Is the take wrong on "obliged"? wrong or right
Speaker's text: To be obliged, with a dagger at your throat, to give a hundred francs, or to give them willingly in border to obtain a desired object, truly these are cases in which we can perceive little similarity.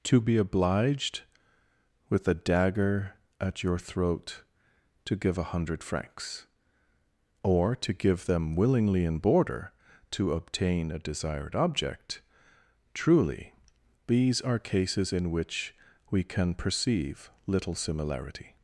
right